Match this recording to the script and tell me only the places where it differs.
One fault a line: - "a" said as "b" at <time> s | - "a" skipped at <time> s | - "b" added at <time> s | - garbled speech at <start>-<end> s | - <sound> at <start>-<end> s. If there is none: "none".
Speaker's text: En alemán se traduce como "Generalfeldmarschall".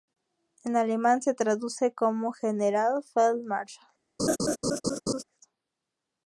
- laugh at 4.2-5.2 s